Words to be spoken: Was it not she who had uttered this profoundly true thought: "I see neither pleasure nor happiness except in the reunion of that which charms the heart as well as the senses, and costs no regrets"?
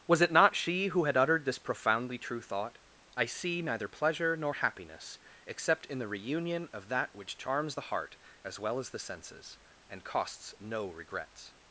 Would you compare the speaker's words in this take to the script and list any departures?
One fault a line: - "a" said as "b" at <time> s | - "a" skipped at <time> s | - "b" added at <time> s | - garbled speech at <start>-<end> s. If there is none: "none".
none